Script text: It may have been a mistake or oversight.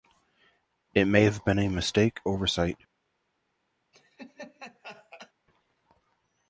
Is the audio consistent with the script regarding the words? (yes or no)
no